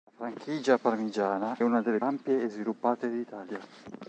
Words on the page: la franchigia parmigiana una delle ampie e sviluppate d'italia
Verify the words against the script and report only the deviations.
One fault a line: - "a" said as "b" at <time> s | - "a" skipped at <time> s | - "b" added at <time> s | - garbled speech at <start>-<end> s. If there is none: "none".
none